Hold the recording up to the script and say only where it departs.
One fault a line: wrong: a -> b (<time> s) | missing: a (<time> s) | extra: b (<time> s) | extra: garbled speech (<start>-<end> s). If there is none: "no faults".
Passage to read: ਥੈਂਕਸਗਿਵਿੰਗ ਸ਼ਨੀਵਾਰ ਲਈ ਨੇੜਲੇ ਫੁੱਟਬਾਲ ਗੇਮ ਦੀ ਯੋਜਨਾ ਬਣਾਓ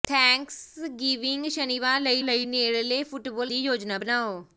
extra: ਲਈ (2.2 s)
missing: ਗੇਮ (3.5 s)